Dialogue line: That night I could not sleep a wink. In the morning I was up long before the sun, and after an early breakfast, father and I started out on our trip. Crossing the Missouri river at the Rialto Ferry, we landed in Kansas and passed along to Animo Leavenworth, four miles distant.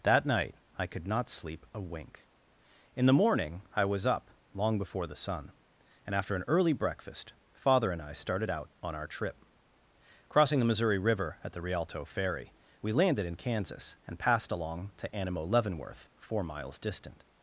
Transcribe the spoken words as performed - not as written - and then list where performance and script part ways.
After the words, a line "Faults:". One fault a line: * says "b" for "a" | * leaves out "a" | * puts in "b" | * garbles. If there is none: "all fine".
That night I could not sleep a wink. In the morning I was up long before the sun, and after an early breakfast, father and I started out on our trip. Crossing the Missouri river at the Rialto Ferry, we landed in Kansas and passed along to Animo Leavenworth, four miles distant.
Faults:
all fine